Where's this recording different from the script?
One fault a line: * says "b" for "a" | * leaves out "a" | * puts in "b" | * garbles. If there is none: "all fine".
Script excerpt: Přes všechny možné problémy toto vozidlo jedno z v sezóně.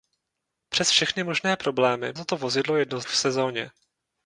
all fine